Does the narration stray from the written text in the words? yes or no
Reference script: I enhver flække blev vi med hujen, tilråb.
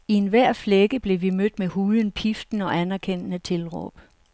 yes